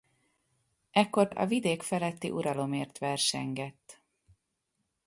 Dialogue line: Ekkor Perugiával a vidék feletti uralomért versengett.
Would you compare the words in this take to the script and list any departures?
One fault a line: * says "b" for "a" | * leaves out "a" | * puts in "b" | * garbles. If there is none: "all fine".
* leaves out "Perugiával"